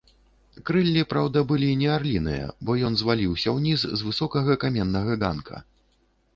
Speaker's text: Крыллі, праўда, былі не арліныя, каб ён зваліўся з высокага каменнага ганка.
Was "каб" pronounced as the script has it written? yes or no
no